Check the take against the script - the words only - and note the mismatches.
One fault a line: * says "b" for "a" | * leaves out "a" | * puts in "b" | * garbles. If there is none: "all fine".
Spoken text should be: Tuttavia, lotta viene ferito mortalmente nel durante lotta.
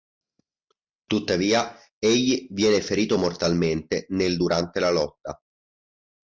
* says "egli" for "lotta"
* puts in "la"